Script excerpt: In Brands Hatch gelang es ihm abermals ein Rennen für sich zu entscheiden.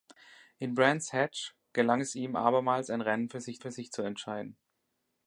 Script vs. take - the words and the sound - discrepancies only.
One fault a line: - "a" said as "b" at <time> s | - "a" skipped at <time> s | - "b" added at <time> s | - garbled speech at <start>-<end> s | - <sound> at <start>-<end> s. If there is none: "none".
- "für sich" added at 3.6 s